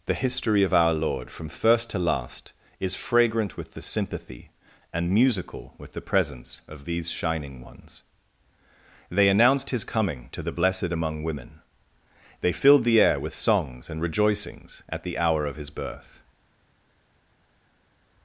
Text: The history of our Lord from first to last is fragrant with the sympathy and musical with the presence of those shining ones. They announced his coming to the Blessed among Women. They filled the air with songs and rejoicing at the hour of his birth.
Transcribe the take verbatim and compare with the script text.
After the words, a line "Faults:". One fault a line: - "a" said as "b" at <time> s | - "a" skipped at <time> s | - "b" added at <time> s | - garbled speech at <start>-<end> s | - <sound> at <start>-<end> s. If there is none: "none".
The history of our Lord from first to last is fragrant with the sympathy and musical with the presence of these shining ones. They announced his coming to the Blessed among Women. They filled the air with songs and rejoicings at the hour of his birth.
Faults:
- "those" said as "these" at 6.8 s
- "rejoicing" said as "rejoicings" at 14.0 s